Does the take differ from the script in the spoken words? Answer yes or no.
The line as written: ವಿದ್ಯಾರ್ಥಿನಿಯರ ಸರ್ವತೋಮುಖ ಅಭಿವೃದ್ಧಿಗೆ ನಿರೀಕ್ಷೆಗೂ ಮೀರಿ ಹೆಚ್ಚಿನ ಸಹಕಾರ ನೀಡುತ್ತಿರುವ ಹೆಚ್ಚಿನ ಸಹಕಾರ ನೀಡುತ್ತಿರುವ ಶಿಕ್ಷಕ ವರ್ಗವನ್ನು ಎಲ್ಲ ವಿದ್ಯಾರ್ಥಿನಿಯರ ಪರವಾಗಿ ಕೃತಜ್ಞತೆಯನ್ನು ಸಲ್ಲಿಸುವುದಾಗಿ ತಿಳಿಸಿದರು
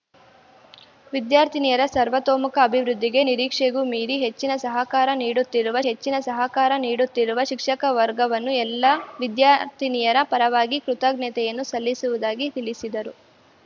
no